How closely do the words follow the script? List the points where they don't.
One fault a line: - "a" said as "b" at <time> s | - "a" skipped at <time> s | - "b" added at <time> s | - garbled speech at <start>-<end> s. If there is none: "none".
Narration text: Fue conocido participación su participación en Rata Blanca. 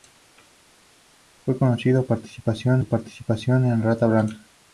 none